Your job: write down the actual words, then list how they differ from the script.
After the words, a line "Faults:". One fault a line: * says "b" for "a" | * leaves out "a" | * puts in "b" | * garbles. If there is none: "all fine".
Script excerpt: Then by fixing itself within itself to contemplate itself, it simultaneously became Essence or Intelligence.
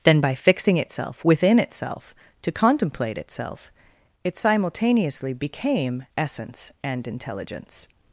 Then by fixing itself within itself to contemplate itself, it simultaneously became Essence and Intelligence.
Faults:
* says "and" for "or"